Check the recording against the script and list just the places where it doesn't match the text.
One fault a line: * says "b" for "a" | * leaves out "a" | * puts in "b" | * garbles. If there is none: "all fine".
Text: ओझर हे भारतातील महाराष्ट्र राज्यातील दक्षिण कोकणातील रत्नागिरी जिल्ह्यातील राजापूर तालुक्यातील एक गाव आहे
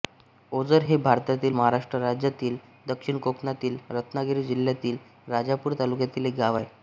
all fine